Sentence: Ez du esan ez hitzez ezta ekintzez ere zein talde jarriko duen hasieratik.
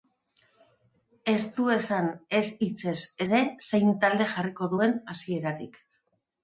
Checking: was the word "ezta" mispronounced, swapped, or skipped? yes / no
yes